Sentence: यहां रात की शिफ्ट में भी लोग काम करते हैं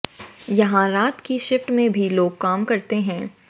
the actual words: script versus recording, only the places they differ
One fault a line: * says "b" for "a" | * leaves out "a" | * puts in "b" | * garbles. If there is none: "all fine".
all fine